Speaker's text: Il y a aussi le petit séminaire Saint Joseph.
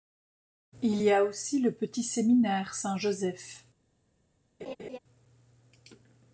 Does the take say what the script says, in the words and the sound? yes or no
no